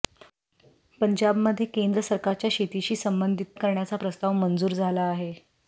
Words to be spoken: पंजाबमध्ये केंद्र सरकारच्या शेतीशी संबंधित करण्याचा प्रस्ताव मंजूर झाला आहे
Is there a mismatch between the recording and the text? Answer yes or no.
no